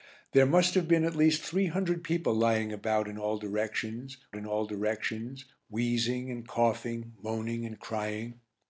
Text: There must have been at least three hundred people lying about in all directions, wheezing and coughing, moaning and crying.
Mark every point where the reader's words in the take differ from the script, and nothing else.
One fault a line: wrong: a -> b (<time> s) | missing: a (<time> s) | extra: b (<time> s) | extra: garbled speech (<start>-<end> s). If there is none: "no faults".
extra: in all directions (4.4 s)